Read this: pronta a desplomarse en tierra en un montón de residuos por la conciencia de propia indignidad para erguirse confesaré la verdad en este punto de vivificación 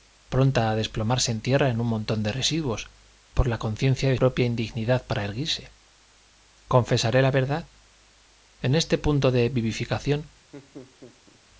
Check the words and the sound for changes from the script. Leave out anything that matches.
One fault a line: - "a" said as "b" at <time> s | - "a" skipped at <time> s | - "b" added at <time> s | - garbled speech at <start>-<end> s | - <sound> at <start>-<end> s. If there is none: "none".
- laugh at 10.5-11.4 s